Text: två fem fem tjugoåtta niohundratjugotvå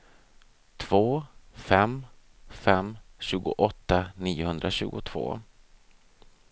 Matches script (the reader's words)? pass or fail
pass